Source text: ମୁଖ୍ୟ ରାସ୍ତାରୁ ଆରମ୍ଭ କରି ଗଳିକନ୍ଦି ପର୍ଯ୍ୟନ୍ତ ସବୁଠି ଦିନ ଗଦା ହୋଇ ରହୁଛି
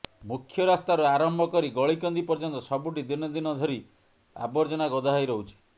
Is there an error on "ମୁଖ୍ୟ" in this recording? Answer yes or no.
no